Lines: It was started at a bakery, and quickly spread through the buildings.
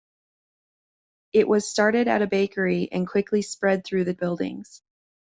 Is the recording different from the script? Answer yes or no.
no